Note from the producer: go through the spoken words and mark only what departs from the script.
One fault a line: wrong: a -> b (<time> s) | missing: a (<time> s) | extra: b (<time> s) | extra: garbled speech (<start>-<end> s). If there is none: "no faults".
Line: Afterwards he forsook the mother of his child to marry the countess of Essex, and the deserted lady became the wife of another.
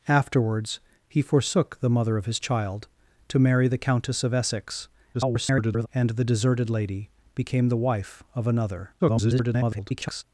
extra: garbled speech (5.1-5.9 s)
extra: garbled speech (9.0-10.2 s)